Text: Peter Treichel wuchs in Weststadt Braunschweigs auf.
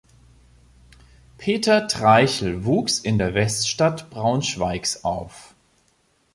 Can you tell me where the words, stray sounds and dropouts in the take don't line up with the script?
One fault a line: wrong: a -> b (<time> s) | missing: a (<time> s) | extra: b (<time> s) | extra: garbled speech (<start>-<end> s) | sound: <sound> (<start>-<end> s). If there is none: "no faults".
extra: der (3.2 s)